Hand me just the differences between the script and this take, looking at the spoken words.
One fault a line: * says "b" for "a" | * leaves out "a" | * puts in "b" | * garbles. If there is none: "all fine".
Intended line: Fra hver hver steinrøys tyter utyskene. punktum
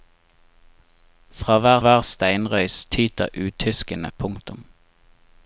all fine